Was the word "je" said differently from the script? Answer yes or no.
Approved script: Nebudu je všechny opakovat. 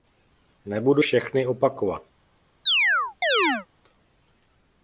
yes